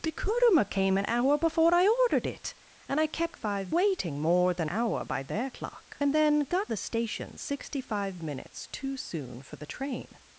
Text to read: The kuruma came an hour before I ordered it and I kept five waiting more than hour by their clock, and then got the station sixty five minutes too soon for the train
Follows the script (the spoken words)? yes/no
yes